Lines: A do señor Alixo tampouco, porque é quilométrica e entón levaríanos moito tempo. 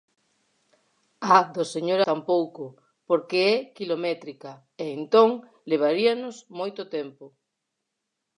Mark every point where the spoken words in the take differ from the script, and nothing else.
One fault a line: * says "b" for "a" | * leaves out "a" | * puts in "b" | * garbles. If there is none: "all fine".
* leaves out "Alixo"